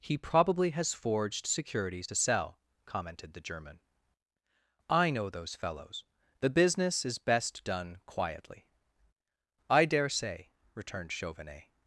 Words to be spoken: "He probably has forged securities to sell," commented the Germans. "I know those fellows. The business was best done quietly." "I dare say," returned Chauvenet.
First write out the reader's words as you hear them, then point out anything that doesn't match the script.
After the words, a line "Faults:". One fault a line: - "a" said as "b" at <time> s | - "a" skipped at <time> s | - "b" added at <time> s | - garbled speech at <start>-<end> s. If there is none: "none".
"He probably has forged securities to sell," commented the German. "I know those fellows. The business is best done quietly." "I dare say," returned Chauvenet.
Faults:
- "Germans" said as "German" at 3.4 s
- "was" said as "is" at 7.0 s